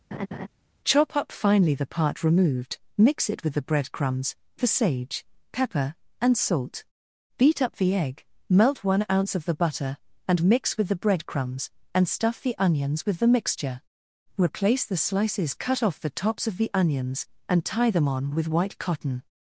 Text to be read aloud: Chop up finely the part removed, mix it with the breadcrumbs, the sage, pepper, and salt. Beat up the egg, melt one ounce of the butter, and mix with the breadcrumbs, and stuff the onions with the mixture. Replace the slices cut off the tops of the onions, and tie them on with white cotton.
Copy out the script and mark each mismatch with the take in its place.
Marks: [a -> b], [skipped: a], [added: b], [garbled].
Chop up finely the part removed, mix it with the breadcrumbs, the sage, pepper, and salt. Beat up the egg, melt one ounce of the butter, and mix with the breadcrumbs, and stuff the onions with the mixture. Replace the slices cut off the tops of the onions, and tie them on with white cotton.